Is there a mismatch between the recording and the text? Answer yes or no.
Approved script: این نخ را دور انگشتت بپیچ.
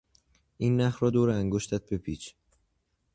no